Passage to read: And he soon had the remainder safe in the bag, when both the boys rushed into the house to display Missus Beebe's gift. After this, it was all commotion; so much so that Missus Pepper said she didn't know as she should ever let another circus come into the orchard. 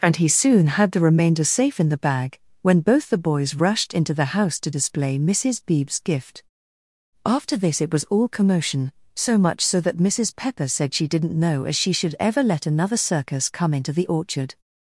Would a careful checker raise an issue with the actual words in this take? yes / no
no